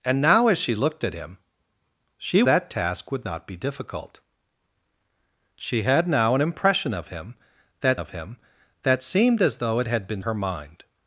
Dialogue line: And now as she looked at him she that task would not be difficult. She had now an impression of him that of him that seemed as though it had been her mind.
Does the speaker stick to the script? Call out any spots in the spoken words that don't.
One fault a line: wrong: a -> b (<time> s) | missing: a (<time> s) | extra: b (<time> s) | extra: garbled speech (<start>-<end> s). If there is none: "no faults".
no faults